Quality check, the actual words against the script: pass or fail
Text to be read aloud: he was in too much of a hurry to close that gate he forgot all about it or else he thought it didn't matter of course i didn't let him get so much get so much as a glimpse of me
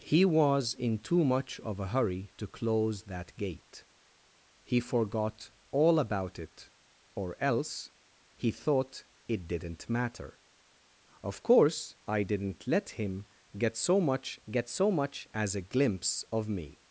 pass